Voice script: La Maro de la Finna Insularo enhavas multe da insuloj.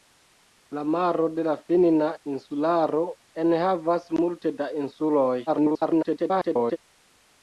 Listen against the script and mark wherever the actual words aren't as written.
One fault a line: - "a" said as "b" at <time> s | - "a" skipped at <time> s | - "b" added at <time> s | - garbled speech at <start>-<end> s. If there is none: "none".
- garbled speech at 5.5-6.8 s